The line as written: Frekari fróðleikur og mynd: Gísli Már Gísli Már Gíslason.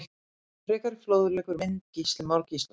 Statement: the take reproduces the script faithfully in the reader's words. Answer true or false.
false